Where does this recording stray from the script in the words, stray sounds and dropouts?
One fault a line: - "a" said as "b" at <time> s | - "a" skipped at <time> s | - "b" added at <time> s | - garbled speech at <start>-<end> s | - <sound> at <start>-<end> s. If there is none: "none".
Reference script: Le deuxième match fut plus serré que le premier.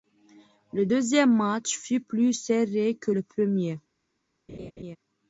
- laugh at 4.5-5.0 s